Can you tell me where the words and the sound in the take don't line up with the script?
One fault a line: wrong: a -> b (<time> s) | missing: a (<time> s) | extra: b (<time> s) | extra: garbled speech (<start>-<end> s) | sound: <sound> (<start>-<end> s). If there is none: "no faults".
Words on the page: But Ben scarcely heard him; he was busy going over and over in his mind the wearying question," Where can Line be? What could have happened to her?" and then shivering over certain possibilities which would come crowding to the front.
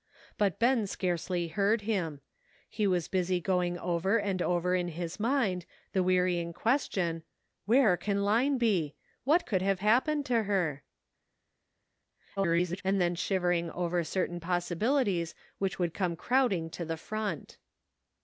extra: garbled speech (12.4-12.8 s)